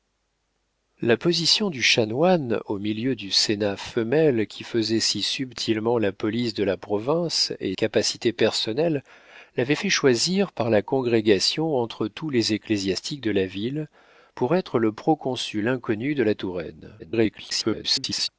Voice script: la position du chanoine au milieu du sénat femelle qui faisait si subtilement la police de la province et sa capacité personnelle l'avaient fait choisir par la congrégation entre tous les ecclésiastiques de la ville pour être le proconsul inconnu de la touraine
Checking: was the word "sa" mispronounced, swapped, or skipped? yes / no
yes